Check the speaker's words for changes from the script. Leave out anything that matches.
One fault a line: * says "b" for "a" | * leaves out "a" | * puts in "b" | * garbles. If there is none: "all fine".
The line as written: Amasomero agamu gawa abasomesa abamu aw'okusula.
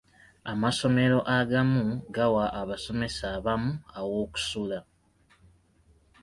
all fine